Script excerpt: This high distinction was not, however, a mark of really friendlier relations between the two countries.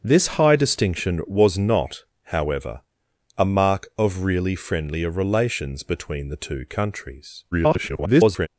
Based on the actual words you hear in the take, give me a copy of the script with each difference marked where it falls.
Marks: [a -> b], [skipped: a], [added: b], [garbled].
This high distinction was not, however, a mark of really friendlier relations between the two countries. [garbled]